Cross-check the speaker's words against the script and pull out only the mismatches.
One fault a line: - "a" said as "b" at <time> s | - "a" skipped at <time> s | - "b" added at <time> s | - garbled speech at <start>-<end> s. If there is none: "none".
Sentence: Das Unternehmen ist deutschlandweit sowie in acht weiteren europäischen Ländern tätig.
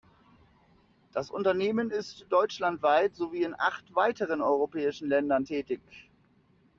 none